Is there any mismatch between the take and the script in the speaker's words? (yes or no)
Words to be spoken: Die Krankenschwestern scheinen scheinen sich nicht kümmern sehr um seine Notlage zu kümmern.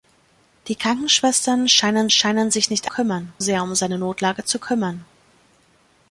no